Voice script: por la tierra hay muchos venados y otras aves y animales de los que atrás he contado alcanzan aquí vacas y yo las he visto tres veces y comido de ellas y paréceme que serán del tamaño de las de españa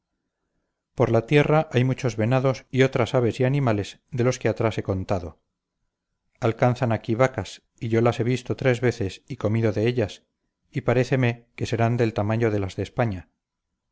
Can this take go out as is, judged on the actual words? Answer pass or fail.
pass